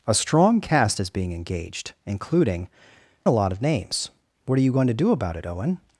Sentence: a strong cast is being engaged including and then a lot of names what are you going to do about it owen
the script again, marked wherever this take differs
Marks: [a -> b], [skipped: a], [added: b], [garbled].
a strong cast is being engaged including [skipped: and then] a lot of names what are you going to do about it owen